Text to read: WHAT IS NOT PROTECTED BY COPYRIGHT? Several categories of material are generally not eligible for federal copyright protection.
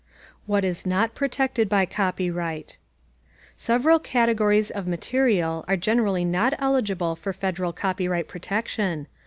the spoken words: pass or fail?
pass